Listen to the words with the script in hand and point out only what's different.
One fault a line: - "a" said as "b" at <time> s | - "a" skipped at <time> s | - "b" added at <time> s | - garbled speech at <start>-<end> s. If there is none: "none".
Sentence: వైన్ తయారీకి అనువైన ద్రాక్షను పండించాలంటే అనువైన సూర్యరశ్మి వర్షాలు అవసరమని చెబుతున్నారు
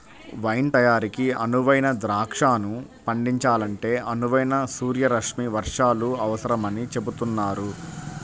none